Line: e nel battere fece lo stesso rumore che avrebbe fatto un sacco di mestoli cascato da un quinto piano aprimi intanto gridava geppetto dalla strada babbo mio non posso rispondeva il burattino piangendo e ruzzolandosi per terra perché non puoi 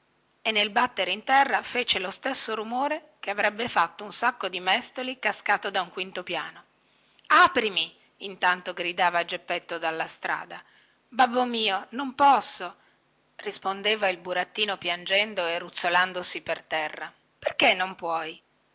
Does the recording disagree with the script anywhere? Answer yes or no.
yes